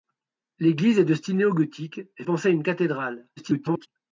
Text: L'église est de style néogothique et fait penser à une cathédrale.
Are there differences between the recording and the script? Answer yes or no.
yes